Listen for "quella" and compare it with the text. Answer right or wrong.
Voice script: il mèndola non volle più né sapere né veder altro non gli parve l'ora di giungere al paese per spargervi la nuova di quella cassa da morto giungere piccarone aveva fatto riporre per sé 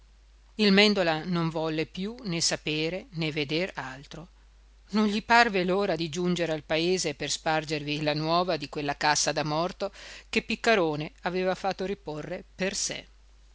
right